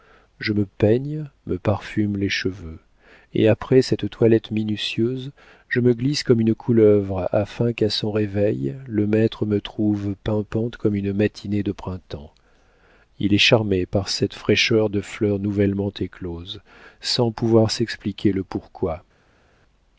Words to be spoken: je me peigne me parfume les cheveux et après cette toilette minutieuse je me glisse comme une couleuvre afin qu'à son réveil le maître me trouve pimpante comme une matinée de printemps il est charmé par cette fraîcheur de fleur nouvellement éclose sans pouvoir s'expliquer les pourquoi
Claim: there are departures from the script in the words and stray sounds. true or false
true